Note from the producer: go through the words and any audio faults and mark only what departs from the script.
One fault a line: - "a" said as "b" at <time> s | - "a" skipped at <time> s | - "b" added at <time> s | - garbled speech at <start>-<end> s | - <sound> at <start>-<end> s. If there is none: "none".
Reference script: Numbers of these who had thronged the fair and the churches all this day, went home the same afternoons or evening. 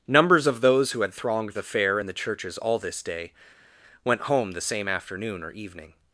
- "these" said as "those" at 0.6 s
- "afternoons" said as "afternoon" at 4.9 s